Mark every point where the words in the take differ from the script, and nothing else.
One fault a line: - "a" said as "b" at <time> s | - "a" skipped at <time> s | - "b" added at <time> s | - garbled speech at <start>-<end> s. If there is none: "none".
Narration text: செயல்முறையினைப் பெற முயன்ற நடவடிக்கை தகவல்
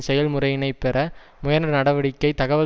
none